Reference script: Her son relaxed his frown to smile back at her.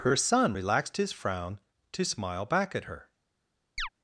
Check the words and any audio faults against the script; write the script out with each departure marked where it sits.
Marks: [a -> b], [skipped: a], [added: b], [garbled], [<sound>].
Her son relaxed his frown to smile back at her. [chirp]